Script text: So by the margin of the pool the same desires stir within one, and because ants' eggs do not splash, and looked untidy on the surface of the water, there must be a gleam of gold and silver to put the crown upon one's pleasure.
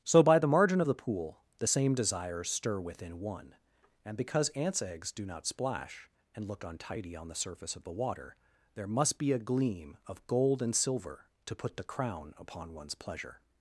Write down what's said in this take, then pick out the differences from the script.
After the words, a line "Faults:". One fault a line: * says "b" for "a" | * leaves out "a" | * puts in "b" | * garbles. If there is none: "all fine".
So by the margin of the pool the same desires stir within one, and because ants' eggs do not splash, and look untidy on the surface of the water, there must be a gleam of gold and silver to put the crown upon one's pleasure.
Faults:
* says "look" for "looked"